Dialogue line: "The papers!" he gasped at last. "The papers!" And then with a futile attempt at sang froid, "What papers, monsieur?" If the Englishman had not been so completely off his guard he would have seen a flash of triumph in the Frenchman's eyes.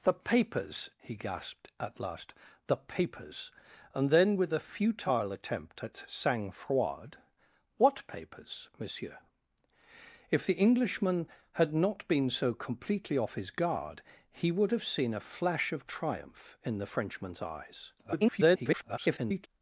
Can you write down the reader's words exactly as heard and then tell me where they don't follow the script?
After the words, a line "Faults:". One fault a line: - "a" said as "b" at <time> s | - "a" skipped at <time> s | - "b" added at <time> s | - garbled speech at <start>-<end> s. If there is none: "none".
"The papers!" he gasped at last. "The papers!" And then with a futile attempt at sang froid, "What papers, monsieur?" If the Englishman had not been so completely off his guard he would have seen a flash of triumph in the Frenchman's eyes. [garbled]
Faults:
- garbled speech at 18.0-19.5 s